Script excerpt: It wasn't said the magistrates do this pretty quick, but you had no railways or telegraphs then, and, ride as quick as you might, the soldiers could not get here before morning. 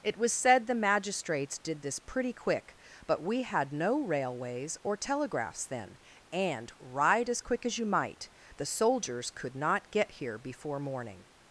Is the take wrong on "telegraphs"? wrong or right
right